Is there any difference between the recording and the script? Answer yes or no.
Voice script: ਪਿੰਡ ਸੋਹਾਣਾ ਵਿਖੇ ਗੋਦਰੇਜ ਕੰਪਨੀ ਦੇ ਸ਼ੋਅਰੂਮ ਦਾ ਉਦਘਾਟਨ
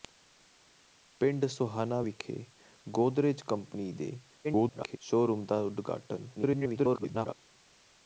yes